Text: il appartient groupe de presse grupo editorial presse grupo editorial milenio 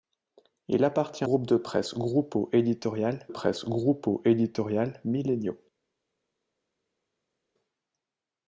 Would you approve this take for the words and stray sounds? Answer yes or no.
yes